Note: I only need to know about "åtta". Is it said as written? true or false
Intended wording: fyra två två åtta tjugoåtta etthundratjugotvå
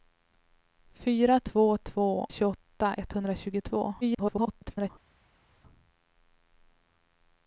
false